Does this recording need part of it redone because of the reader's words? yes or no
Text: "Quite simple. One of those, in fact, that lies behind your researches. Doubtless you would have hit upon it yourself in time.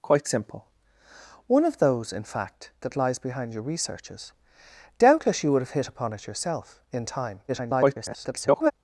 yes